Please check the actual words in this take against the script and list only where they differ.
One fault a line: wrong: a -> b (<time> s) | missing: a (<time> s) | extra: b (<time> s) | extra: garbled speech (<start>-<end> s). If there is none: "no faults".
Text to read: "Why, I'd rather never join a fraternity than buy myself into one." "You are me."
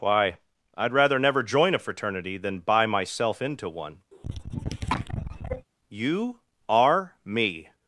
no faults